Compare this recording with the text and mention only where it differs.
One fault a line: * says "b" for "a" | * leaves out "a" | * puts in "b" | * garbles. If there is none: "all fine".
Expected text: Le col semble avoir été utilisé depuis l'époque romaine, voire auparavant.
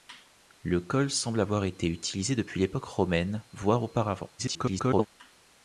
* garbles